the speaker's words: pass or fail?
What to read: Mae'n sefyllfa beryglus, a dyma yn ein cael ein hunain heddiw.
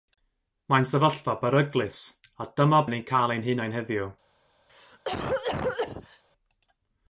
pass